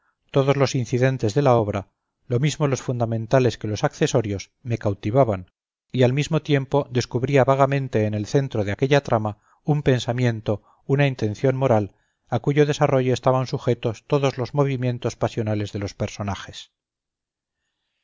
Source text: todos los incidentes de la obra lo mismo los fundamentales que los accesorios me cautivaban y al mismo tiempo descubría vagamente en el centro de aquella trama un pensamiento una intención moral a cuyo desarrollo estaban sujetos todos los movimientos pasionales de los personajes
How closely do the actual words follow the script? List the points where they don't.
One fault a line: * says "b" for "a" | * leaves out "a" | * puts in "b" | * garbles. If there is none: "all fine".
all fine